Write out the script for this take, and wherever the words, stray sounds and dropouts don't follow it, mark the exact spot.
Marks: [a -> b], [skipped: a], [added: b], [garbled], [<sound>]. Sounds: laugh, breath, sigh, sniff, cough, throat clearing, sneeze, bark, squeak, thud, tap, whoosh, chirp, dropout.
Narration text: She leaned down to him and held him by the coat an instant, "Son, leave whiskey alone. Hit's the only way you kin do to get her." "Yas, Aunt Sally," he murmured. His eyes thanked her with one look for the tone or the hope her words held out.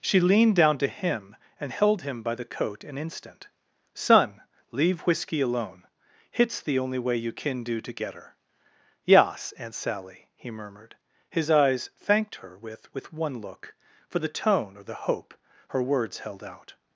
She leaned down to him and held him by the coat an instant, "Son, leave whiskey alone. Hit's the only way you kin do to get her." "Yas, Aunt Sally," he murmured. His eyes thanked her with [added: with] one look for the tone or the hope her words held out.